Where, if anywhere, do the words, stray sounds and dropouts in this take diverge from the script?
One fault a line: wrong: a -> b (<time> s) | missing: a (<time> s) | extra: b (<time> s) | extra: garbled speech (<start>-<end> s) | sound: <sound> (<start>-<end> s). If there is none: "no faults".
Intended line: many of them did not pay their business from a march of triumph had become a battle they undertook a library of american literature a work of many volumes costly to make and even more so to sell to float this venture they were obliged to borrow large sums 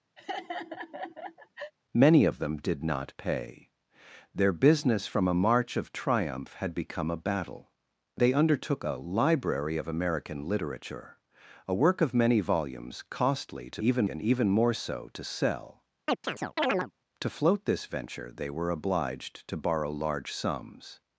sound: laugh (0.2-1.7 s)
wrong: make -> even (13.8 s)
sound: chirp (16.1-16.9 s)